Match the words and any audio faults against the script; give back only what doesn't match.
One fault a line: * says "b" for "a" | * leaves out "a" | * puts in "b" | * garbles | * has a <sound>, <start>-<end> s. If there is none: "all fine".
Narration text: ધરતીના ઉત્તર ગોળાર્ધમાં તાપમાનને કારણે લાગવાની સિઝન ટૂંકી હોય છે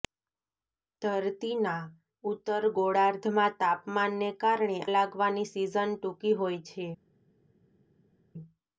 all fine